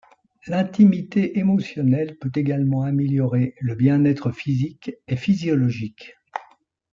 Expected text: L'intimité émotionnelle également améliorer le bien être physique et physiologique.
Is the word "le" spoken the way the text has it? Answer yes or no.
yes